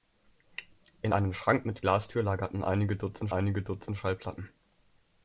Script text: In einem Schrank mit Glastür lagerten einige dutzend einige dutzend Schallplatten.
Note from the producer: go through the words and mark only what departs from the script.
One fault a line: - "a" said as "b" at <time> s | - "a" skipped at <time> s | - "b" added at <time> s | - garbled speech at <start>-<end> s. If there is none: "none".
none